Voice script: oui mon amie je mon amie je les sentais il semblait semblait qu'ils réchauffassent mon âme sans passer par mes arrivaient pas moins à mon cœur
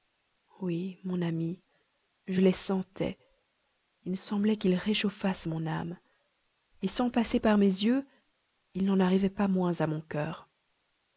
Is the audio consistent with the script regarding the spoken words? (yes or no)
no